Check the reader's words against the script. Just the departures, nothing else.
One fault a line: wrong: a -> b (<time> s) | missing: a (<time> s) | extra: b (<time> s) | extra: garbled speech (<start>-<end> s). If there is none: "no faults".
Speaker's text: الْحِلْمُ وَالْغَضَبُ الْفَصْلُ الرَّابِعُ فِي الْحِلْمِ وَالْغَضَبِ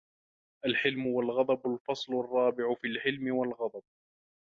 no faults